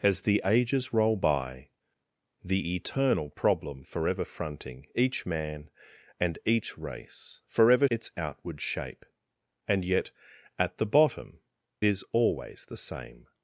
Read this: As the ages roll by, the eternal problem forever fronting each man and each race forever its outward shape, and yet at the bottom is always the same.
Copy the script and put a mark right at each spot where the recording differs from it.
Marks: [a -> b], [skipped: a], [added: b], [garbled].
As the ages roll by, the eternal problem forever fronting each man and each race forever its outward shape, and yet at the bottom is always the same.